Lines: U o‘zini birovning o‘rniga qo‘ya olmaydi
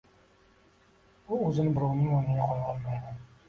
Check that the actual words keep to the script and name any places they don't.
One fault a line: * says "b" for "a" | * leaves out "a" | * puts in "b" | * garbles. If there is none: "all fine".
all fine